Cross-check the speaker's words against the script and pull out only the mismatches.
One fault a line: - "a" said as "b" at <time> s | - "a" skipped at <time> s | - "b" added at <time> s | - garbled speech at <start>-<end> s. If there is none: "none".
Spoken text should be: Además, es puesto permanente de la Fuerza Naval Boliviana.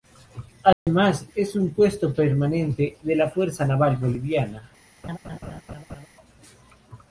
- "un" added at 1.6 s